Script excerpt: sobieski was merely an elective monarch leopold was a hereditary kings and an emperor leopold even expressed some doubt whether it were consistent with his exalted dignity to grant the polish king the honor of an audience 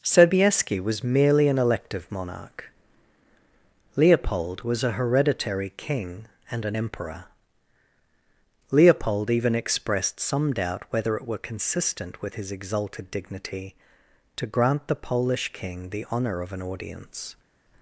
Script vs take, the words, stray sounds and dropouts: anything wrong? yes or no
yes